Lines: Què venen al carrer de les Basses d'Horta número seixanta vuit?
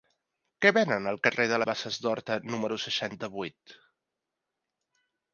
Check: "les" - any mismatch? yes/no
yes